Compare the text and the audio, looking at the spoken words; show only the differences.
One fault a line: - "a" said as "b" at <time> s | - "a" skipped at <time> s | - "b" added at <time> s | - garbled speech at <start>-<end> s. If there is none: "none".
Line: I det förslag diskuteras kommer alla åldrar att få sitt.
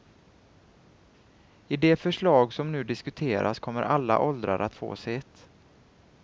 - "som nu" added at 2.5 s